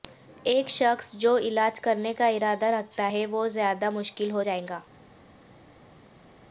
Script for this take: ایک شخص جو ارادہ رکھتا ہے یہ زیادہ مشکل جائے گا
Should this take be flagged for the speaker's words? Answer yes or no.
yes